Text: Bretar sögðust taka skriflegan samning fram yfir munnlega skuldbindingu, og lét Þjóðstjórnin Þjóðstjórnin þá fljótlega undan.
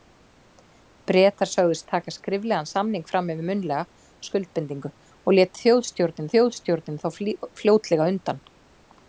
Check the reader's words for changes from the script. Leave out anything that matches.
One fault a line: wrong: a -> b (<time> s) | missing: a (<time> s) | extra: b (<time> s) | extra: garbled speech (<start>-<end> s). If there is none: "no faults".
no faults